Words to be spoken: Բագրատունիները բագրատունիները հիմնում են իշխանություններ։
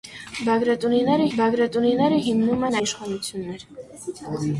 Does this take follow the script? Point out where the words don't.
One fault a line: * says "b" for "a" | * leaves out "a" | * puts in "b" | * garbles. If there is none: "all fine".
all fine